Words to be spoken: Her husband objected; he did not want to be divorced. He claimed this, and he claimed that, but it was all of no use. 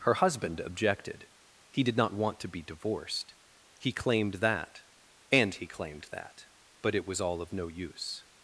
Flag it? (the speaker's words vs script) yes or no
yes